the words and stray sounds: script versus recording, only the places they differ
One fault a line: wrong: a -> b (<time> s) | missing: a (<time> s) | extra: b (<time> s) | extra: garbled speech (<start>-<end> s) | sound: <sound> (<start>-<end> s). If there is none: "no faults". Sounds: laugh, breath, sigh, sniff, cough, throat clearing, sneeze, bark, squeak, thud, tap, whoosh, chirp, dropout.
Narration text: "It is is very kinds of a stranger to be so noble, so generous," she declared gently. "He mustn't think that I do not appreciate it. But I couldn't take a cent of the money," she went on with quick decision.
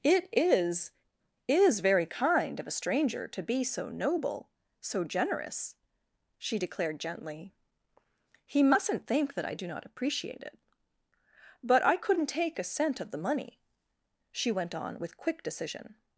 wrong: kinds -> kind (2.1 s)